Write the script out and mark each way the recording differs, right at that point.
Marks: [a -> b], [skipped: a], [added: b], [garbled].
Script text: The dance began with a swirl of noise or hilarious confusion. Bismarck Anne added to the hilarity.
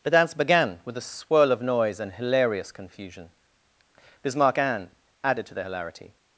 The dance began with a swirl of noise [or -> and] hilarious confusion. Bismarck Anne added to the hilarity.